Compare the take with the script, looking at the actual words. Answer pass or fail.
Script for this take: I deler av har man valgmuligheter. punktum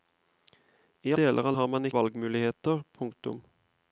pass